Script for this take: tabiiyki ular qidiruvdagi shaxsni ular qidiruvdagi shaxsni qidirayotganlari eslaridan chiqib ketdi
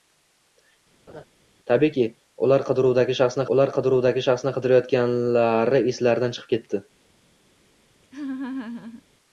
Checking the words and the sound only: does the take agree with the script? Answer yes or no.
no